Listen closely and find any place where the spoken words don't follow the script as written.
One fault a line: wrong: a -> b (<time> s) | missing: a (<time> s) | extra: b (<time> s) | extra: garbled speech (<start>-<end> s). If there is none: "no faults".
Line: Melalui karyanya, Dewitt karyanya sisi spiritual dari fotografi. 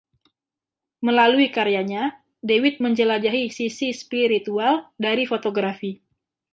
wrong: karyanya -> menjelajahi (2.8 s)